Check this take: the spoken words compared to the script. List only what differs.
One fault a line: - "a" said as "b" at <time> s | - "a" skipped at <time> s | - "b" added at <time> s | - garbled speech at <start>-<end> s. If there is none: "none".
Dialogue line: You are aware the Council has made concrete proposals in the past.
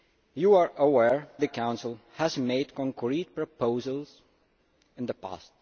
none